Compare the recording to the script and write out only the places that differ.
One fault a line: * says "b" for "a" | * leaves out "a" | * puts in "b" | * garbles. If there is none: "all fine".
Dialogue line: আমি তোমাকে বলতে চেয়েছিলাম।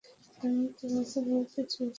all fine